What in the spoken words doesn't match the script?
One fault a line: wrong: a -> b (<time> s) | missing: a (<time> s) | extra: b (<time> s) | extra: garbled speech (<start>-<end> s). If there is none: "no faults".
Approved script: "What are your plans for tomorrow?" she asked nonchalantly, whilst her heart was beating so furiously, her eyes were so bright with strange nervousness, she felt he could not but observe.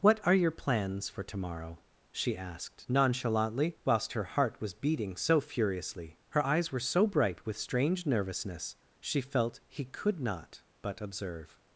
no faults